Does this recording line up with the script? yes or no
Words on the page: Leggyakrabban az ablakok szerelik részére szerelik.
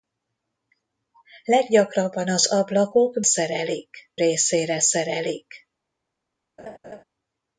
yes